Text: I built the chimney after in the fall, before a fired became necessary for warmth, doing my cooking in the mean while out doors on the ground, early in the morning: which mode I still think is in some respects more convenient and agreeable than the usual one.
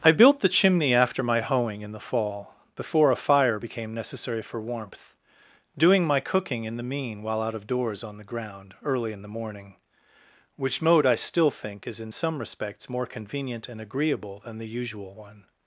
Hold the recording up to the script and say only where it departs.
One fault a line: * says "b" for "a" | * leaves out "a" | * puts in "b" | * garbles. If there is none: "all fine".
* puts in "my hoeing"
* says "fire" for "fired"
* puts in "of"